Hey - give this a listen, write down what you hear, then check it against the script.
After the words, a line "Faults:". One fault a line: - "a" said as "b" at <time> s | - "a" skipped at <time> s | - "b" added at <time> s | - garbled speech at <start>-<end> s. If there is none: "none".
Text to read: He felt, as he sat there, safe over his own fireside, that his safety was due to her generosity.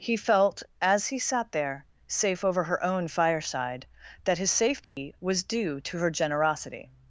He felt, as he sat there, safe over her own fireside, that his safety was due to her generosity.
Faults:
- "his" said as "her" at 2.6 s